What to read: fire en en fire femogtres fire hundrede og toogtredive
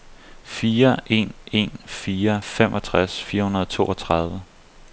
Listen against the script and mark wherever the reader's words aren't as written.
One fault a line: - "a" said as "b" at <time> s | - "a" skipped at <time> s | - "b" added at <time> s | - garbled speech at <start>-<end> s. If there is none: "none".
none